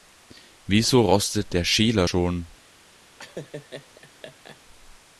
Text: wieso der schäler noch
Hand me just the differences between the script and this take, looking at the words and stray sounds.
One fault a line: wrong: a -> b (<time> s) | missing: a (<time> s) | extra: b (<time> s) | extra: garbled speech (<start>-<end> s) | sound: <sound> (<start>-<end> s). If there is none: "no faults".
extra: rostet (1.0 s)
wrong: noch -> schon (2.0 s)
sound: laugh (3.2-4.6 s)